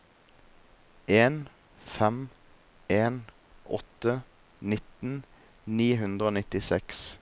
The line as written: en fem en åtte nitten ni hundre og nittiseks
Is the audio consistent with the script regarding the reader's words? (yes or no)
yes